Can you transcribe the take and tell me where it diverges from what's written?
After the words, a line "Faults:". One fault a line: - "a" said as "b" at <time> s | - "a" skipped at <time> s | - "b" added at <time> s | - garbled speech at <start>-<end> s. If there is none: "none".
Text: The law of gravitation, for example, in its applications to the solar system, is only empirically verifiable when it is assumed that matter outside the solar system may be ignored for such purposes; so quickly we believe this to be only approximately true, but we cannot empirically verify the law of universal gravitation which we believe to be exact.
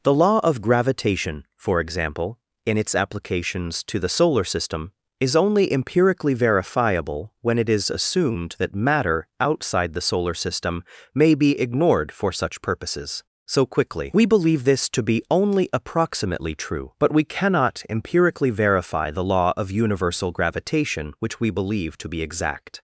The law of gravitation, for example, in its applications to the solar system, is only empirically verifiable when it is assumed that matter outside the solar system may be ignored for such purposes; so quickly we believe this to be only approximately true, but we cannot empirically verify the law of universal gravitation which we believe to be exact.
Faults:
none